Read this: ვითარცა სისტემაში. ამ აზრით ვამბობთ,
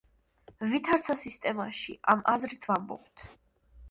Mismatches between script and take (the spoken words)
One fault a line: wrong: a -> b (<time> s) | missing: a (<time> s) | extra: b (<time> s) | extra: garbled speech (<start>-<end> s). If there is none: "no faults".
no faults